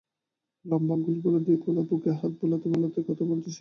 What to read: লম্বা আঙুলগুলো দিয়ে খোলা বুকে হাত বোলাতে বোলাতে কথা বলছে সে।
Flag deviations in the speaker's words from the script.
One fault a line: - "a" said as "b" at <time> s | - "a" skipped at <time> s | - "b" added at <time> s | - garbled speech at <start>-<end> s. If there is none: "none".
none